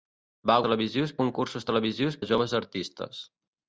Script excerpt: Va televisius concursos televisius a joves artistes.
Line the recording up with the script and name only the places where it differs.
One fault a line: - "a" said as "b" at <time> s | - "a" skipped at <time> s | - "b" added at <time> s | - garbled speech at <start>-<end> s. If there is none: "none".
none